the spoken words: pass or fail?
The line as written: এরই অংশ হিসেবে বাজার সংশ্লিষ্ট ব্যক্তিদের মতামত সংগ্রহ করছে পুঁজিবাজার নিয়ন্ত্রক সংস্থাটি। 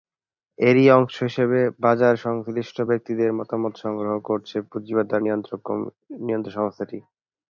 pass